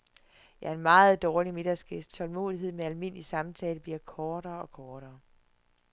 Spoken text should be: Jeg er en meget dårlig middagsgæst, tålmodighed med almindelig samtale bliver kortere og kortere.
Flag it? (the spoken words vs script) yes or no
no